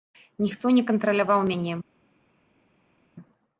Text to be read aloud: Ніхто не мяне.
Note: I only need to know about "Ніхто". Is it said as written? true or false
true